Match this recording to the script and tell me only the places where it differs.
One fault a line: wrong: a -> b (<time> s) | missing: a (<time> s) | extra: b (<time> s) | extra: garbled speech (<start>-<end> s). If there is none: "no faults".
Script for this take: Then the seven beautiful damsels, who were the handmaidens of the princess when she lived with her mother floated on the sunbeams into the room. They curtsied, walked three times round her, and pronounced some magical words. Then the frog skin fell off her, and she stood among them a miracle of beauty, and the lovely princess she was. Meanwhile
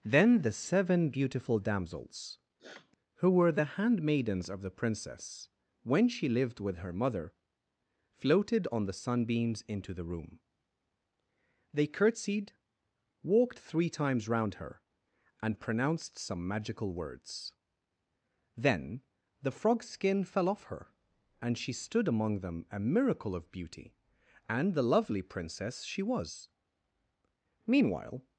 no faults